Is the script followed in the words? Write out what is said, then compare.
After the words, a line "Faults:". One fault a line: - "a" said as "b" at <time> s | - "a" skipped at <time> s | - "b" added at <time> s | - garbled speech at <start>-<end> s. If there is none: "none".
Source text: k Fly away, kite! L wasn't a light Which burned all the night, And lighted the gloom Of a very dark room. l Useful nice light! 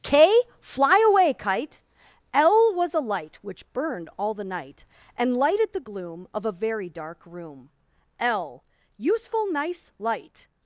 k Fly away, kite! L was a light Which burned all the night, And lighted the gloom Of a very dark room. l Useful nice light!
Faults:
- "wasn't" said as "was" at 2.7 s